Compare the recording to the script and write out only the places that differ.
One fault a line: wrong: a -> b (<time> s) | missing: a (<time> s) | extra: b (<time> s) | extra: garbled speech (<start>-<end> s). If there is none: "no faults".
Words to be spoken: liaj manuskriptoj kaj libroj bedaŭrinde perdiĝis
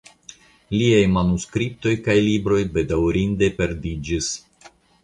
no faults